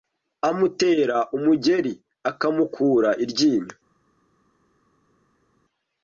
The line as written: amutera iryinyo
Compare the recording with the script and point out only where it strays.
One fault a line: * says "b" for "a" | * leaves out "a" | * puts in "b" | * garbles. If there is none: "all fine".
* puts in "umugeri akamukura"